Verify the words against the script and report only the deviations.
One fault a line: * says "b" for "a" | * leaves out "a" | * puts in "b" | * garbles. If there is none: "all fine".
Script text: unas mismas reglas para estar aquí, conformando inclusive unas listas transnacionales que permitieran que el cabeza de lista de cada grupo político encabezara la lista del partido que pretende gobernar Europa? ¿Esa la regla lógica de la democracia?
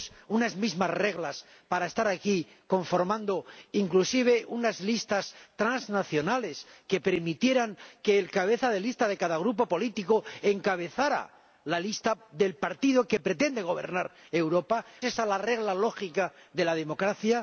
all fine